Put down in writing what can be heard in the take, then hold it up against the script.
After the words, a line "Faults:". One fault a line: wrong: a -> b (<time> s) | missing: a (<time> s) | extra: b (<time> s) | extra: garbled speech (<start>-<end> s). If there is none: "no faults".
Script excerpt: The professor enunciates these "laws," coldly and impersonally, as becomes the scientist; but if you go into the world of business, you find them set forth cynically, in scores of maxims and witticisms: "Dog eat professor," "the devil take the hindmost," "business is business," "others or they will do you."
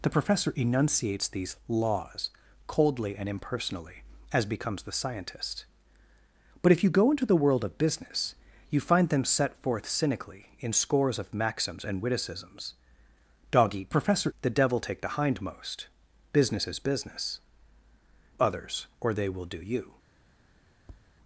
The professor enunciates these "laws," coldly and impersonally, as becomes the scientist; but if you go into the world of business, you find them set forth cynically, in scores of maxims and witticisms: "Dog eat professor," "the devil take the hindmost," "business is business," "others or they will do you."
Faults:
no faults